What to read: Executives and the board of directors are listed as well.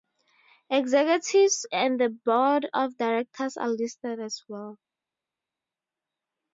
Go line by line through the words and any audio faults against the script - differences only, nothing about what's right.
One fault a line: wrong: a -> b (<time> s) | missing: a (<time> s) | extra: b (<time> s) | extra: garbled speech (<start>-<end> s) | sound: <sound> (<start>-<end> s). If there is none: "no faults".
no faults